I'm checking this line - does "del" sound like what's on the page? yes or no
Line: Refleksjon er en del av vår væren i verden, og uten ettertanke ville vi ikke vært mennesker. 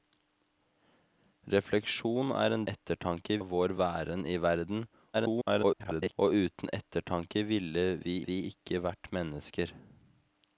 no